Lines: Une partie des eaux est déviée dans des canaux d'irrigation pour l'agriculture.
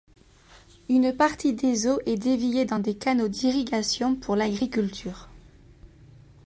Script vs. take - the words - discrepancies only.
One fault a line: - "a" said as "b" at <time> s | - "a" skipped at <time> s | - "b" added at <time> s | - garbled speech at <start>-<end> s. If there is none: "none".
none